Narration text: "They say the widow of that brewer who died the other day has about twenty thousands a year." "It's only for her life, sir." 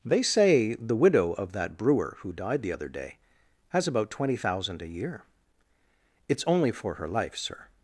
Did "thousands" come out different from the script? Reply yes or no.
yes